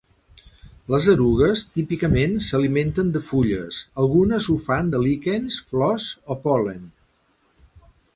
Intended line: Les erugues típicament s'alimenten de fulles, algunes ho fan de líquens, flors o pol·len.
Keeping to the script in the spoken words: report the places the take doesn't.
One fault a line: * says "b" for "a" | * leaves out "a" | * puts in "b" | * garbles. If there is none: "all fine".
all fine